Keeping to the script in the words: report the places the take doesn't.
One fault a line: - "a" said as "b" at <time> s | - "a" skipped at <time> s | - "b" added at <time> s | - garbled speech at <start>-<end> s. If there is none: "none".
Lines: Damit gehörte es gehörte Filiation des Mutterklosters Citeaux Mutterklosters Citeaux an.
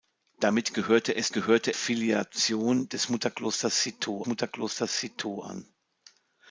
none